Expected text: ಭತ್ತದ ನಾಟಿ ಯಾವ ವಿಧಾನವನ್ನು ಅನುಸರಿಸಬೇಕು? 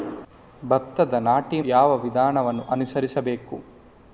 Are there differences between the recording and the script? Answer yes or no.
no